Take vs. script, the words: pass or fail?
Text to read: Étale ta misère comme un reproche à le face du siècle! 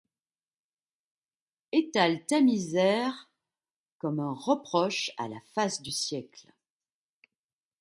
fail